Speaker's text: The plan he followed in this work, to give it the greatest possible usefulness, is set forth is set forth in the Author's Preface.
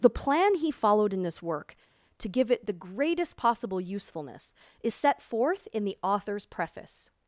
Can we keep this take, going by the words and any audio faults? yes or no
no